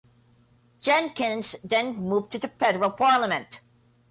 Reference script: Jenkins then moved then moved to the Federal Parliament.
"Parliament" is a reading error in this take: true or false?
false